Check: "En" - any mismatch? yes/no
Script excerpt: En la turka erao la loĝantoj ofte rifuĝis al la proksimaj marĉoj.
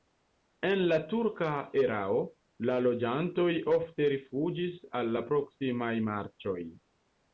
no